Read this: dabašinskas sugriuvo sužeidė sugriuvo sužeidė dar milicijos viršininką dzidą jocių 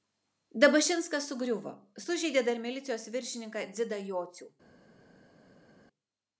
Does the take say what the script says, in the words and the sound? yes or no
no